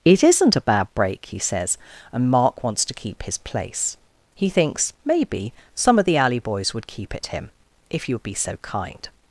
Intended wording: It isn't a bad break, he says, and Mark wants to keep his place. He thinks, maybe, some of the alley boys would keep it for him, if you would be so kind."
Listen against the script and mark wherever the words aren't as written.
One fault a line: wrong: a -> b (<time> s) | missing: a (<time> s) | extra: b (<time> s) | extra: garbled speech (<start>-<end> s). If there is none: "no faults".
missing: for (7.3 s)